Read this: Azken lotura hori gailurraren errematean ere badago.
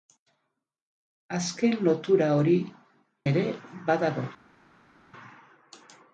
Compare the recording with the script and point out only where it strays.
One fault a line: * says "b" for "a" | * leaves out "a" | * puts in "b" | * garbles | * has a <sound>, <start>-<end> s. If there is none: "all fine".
* leaves out "gailurraren errematean"